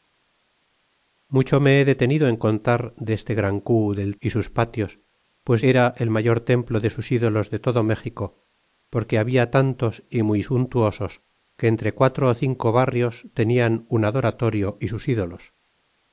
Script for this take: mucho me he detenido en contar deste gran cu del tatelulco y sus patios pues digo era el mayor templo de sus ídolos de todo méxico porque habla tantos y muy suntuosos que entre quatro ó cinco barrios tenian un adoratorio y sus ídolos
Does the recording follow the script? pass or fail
fail